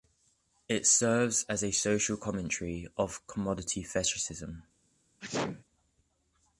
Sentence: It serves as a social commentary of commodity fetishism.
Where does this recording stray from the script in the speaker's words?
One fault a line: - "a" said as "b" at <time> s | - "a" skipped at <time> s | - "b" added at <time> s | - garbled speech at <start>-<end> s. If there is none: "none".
none